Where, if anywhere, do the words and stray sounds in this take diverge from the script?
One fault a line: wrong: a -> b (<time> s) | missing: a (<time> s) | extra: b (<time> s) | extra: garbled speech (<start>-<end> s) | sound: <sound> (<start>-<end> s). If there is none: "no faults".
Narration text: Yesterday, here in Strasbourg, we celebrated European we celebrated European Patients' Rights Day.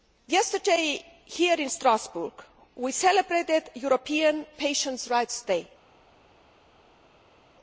missing: we celebrated European (4.5 s)